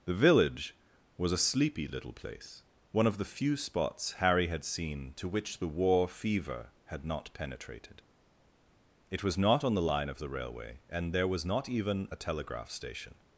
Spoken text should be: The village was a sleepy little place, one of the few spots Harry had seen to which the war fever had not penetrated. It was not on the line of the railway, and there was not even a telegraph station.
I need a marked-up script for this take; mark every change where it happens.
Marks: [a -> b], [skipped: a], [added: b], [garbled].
The village was a sleepy little place, one of the few spots Harry had seen to which the war fever had not penetrated. It was not on the line of the railway, and there was not even a telegraph station.